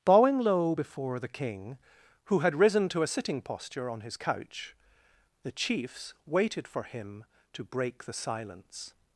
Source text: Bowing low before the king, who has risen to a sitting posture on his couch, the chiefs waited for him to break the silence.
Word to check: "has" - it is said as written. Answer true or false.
false